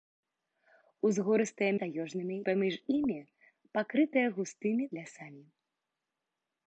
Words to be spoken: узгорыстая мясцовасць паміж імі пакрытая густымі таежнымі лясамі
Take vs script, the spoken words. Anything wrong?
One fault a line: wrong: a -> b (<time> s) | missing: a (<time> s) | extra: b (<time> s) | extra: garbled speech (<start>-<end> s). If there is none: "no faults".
wrong: мясцовасць -> таежнымі (1.8 s)
missing: таежнымі (4.8 s)